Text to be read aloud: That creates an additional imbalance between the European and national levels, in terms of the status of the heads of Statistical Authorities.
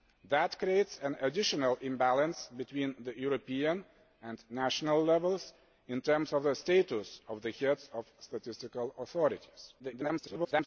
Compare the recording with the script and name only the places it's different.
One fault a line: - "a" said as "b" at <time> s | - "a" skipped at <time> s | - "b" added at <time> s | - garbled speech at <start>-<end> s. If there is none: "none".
- garbled speech at 9.8-10.7 s